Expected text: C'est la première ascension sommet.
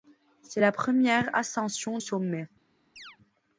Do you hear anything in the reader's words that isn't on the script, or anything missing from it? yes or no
no